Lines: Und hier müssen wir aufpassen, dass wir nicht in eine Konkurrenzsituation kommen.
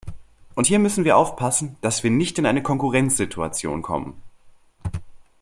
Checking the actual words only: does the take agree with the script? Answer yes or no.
yes